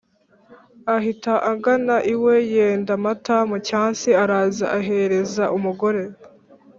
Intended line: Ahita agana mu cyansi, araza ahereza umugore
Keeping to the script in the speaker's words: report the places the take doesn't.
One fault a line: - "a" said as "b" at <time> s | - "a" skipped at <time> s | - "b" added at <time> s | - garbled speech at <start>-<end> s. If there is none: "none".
- "iwe yenda amata" added at 2.1 s